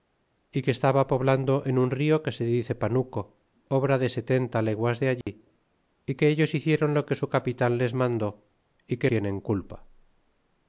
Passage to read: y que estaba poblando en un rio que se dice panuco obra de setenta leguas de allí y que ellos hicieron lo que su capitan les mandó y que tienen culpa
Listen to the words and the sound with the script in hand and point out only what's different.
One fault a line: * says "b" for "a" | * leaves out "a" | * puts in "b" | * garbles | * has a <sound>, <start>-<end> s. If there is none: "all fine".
* has a dropout, 5.2-5.3 s